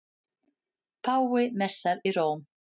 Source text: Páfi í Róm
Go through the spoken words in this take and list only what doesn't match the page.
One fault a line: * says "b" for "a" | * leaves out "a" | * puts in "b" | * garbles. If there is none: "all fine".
* puts in "messar"